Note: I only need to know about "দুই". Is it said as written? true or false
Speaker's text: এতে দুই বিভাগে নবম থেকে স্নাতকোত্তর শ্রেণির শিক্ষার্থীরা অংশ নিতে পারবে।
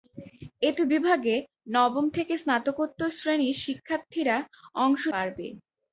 false